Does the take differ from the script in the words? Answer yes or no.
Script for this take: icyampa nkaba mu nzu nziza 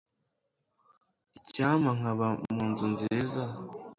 no